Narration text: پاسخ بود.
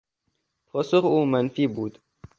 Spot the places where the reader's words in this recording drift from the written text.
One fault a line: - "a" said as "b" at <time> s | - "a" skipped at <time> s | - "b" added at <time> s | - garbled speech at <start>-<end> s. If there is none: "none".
- "او منفی" added at 1.0 s